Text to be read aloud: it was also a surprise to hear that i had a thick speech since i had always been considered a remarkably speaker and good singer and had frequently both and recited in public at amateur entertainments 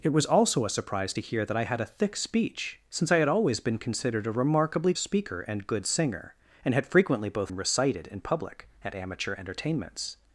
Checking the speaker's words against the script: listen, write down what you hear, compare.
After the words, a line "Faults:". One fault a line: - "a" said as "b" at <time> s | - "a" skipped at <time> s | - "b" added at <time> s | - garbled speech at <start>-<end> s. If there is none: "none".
it was also a surprise to hear that i had a thick speech since i had always been considered a remarkably speaker and good singer and had frequently both and recited in public at amateur entertainments
Faults:
none